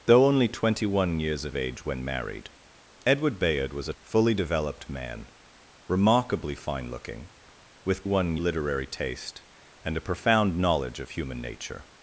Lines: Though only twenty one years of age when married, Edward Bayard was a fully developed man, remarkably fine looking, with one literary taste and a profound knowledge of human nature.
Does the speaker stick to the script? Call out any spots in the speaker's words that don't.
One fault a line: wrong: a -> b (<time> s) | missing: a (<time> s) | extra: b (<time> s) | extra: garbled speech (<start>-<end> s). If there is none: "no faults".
no faults